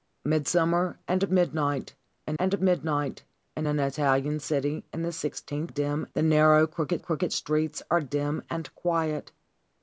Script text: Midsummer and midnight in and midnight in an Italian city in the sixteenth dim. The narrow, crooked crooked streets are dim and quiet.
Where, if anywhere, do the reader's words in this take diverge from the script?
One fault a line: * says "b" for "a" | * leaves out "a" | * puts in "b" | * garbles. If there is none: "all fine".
all fine